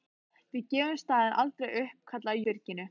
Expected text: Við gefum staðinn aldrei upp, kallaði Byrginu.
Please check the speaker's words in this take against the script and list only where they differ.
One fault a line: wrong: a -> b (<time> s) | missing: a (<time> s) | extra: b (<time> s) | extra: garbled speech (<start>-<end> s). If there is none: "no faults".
no faults